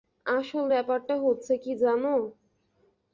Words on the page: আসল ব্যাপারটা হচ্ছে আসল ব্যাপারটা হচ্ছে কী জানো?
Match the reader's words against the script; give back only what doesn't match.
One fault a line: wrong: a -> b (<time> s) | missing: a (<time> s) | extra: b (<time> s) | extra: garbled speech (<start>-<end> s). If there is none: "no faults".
missing: আসল ব্যাপারটা হচ্ছে (1.5 s)